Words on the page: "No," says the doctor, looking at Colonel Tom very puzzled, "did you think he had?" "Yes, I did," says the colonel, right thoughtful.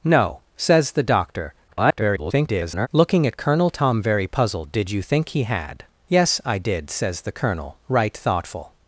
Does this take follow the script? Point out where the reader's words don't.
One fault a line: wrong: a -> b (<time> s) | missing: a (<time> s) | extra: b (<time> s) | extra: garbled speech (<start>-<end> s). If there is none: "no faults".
extra: garbled speech (1.7-2.9 s)